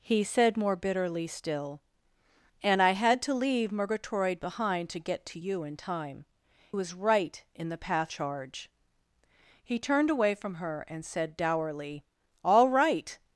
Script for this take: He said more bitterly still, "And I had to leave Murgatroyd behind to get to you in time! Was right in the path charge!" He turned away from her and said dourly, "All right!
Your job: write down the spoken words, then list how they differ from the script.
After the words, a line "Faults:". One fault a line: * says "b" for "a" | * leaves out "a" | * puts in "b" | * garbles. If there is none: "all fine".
He said more bitterly still, "And I had to leave Murgatroyd behind to get to you in time! Was right in the path charge!" He turned away from her and said dourly, "All right!
Faults:
all fine